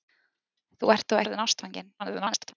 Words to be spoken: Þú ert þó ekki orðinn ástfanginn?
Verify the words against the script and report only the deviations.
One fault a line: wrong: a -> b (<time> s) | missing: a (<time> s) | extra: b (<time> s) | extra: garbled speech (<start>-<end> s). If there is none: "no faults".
missing: ekki (1.2 s)
extra: garbled speech (2.0-2.5 s)